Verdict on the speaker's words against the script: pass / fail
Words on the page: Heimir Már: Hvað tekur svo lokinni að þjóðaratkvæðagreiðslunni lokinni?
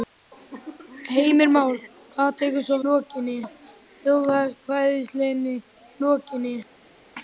pass